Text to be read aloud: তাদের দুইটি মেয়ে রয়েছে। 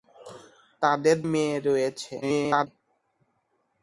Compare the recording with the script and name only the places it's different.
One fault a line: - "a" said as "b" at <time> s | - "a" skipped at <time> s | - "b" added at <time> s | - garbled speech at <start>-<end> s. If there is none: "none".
- "দুইটি" skipped at 1.2 s
- garbled speech at 2.2-2.7 s